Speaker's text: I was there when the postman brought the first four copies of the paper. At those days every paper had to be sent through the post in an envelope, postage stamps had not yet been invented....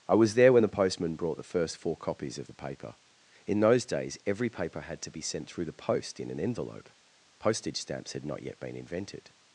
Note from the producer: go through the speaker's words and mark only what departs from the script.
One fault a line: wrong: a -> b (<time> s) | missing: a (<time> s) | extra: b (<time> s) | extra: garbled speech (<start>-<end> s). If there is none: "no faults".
wrong: At -> In (3.5 s)